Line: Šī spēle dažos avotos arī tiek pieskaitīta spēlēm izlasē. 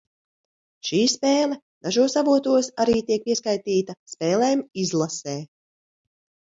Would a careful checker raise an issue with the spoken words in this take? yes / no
no